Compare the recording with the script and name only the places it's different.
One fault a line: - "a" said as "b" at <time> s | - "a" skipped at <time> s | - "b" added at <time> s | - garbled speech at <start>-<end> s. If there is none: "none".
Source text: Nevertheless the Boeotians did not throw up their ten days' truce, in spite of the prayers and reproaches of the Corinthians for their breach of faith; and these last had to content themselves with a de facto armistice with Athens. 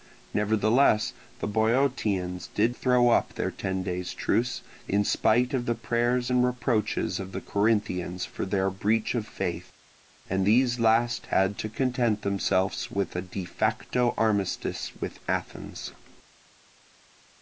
- "not" skipped at 2.8 s